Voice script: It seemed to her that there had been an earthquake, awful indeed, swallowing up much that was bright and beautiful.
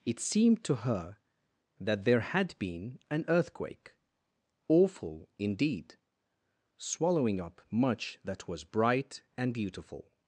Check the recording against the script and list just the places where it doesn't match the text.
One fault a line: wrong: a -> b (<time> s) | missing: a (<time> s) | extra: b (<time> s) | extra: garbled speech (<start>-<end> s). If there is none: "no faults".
no faults